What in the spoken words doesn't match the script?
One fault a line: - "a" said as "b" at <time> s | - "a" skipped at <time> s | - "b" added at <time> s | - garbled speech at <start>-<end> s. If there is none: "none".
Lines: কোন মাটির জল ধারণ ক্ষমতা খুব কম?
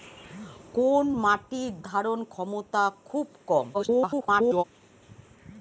- "জল" skipped at 1.7 s
- garbled speech at 3.7-4.6 s